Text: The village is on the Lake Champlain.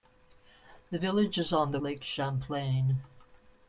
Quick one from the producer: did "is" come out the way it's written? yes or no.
yes